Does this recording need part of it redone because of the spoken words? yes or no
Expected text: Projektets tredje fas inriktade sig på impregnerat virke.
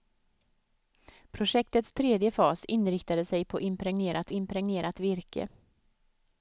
yes